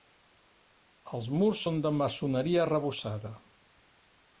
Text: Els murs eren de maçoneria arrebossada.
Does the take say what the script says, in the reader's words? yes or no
no